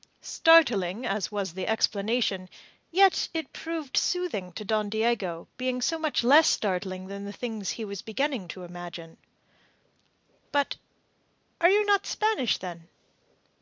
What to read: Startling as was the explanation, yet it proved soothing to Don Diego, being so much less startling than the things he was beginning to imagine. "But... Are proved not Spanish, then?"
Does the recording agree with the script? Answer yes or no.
no